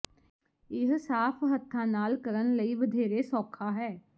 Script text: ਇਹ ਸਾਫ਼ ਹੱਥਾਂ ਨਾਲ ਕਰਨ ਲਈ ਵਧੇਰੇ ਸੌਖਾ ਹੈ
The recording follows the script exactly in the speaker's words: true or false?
true